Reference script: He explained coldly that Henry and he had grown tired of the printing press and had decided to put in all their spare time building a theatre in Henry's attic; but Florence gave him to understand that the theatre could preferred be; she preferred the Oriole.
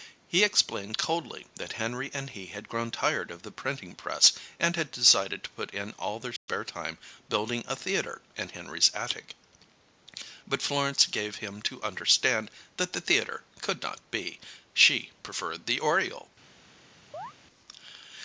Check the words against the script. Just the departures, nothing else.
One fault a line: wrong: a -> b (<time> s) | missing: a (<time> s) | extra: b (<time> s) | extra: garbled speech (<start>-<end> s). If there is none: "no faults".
wrong: preferred -> not (13.8 s)